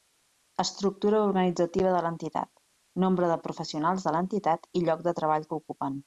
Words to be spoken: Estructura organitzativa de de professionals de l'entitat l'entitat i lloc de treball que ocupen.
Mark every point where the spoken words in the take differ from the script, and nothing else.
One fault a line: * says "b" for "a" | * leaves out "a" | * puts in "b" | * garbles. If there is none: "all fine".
* puts in "l'entitat nombre"
* leaves out "l'entitat"